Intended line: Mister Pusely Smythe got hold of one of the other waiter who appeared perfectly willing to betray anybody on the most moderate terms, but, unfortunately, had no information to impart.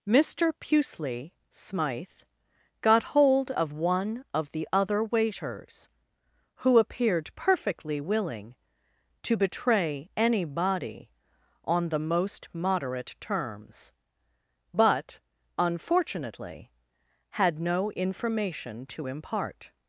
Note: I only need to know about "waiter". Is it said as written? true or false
false